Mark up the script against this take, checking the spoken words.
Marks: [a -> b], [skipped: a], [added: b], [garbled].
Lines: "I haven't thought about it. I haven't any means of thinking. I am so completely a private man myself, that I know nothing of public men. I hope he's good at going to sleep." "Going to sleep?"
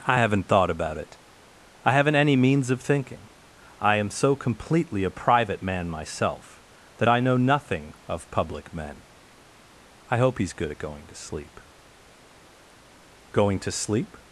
"I haven't thought about it. I haven't any means of thinking. I am so completely a private man myself, that I know nothing of public men. I hope he's good at going to sleep." "Going to sleep?"